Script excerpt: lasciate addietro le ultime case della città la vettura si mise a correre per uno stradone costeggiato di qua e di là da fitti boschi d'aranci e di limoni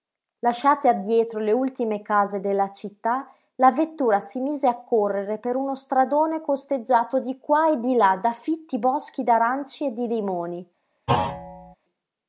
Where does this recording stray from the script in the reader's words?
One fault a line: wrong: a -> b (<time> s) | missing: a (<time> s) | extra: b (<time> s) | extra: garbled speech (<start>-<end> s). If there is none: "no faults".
no faults